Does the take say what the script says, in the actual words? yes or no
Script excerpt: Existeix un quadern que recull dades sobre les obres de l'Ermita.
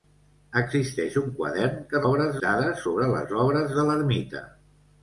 no